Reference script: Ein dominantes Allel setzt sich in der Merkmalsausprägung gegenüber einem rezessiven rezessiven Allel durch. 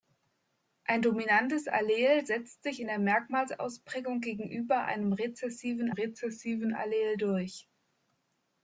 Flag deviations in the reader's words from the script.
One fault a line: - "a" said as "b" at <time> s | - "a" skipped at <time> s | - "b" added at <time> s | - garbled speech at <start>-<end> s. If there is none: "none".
none